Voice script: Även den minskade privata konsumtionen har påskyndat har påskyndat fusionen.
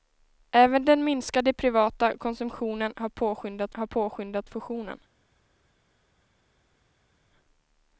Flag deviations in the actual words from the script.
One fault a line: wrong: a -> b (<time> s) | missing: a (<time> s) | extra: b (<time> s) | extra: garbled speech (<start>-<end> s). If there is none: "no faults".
no faults